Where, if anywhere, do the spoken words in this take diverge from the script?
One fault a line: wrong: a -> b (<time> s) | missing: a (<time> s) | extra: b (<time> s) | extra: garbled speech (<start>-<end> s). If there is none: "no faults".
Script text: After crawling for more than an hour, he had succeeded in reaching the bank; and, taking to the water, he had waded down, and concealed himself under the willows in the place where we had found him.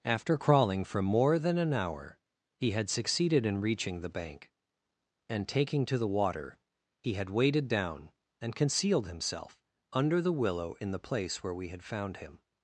wrong: willows -> willow (10.3 s)